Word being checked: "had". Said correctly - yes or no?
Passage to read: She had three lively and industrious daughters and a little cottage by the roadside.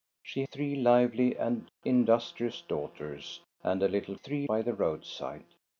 no